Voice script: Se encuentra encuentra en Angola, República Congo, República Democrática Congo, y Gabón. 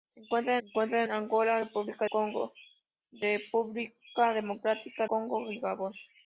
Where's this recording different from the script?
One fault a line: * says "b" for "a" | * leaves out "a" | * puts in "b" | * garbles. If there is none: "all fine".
all fine